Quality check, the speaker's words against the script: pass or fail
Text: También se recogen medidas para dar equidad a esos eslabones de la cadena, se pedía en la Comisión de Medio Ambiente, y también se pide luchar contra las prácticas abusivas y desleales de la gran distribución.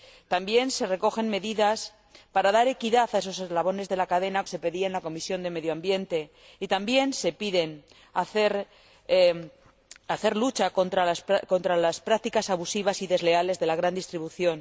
pass